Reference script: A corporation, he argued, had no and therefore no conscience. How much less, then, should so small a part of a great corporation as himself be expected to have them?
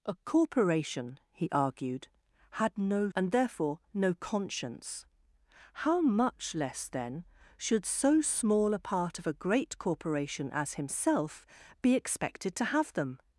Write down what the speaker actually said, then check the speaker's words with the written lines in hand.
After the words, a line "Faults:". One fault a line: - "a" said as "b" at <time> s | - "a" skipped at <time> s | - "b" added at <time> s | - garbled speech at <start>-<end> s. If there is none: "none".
A corporation, he argued, had no and therefore no conscience. How much less, then, should so small a part of a great corporation as himself be expected to have them?
Faults:
none